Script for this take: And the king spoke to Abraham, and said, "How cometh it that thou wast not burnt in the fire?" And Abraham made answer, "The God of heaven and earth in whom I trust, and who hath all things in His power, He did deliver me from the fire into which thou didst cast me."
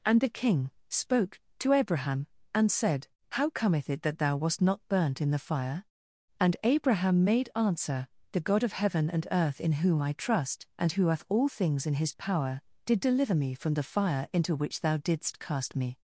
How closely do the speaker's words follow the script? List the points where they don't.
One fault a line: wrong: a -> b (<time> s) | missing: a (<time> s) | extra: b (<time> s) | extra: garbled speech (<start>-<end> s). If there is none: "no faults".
missing: He (12.6 s)